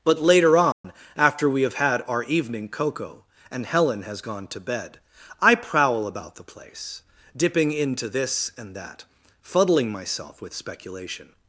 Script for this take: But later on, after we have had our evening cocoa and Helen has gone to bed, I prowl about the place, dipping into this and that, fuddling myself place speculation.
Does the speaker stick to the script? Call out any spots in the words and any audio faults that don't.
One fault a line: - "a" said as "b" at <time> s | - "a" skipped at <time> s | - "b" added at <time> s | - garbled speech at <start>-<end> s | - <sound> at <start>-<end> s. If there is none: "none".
- dropout at 0.7-0.8 s
- "place" said as "with" at 10.4 s